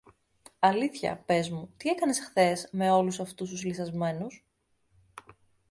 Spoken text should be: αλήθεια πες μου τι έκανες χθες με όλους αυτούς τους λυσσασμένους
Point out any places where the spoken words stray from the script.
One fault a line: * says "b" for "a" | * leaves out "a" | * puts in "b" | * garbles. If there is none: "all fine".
all fine